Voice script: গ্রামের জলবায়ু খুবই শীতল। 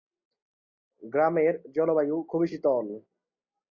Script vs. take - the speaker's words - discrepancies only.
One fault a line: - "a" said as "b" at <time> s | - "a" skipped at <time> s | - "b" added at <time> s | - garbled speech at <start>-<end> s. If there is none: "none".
none